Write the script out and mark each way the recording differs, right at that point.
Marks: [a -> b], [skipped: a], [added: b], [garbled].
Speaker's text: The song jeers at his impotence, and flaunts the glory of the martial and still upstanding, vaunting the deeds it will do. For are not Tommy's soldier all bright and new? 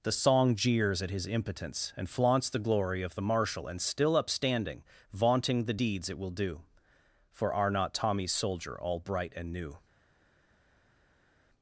The song jeers at his impotence, and flaunts the glory of the martial and still upstanding, vaunting the deeds it will do. For are not Tommy's soldier all bright and new?